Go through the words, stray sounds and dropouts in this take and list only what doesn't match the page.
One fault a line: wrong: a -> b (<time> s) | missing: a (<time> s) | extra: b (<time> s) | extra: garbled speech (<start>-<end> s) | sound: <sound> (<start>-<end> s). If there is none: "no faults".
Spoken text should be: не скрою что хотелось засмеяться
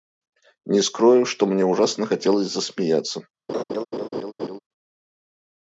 extra: мне ужасно (1.4 s)
sound: laugh (3.5-4.6 s)